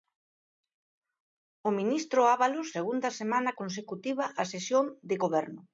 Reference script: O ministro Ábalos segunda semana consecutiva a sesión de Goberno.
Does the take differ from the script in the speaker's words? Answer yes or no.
no